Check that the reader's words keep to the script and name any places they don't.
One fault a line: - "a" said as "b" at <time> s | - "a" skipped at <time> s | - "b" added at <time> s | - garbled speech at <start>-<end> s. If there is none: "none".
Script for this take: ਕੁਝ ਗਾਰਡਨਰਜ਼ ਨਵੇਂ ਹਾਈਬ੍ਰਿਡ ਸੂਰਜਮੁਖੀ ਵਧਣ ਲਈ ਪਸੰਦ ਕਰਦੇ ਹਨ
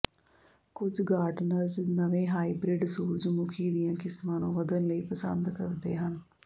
- "ਦੀਆਂ ਕਿਸਮਾਂ ਨੂੰ" added at 3.7 s